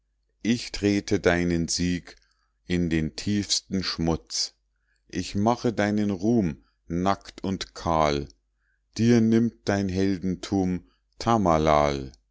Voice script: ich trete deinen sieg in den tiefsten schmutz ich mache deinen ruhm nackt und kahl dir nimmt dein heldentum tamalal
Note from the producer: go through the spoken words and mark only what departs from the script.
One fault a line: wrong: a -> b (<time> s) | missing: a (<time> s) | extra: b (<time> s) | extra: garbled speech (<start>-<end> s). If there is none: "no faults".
no faults